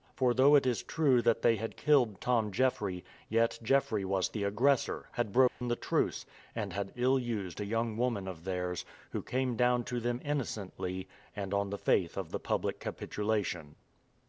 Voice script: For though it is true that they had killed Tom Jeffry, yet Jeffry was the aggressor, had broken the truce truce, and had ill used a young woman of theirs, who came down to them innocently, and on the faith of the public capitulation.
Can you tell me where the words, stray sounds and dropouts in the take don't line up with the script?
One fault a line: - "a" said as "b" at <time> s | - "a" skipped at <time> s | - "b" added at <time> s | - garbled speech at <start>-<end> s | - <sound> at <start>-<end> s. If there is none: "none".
- dropout at 5.5-5.6 s
- "truce" skipped at 6.2 s